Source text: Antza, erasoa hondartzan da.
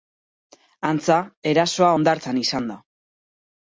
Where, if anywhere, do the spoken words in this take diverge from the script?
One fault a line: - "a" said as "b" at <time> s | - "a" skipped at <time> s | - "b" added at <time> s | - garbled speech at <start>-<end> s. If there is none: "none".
- "izan" added at 2.4 s